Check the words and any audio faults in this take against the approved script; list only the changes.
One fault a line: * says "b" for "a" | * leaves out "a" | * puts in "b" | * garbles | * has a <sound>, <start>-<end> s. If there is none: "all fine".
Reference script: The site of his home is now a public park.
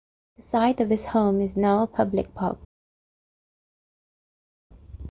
all fine